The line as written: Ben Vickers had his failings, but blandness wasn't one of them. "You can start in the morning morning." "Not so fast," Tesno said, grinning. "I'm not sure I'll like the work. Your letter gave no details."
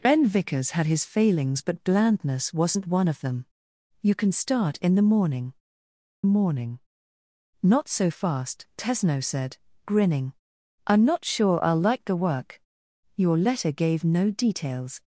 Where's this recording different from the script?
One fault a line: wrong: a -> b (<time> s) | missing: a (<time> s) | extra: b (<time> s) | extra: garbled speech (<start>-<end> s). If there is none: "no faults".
no faults